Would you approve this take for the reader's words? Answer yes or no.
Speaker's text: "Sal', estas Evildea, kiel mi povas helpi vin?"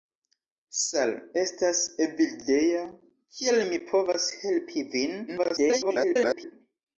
no